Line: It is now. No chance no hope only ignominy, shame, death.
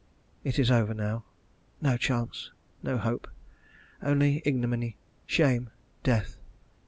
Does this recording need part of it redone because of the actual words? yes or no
yes